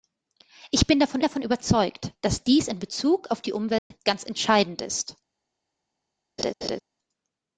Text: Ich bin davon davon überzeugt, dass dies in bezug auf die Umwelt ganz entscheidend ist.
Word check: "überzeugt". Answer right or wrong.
right